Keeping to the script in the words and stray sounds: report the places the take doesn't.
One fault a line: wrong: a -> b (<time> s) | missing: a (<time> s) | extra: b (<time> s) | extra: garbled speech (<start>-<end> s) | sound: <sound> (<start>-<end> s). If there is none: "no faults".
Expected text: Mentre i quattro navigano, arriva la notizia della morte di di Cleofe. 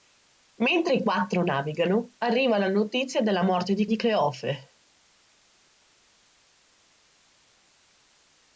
no faults